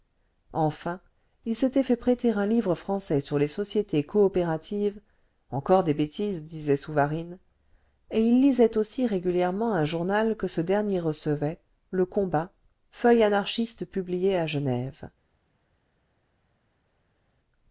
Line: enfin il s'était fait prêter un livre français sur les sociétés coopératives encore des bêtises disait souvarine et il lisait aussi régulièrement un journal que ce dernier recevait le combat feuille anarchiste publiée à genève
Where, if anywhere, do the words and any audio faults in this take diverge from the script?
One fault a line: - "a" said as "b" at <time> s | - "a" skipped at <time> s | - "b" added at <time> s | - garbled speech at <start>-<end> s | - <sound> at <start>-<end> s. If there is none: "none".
none